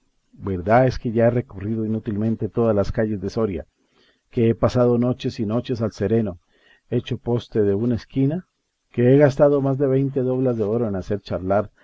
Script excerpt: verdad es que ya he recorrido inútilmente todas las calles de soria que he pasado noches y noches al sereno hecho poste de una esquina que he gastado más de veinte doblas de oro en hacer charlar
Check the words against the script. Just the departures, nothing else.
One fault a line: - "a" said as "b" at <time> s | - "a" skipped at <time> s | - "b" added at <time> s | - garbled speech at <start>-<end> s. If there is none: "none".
none